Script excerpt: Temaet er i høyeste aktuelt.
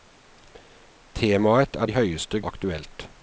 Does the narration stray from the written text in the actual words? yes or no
no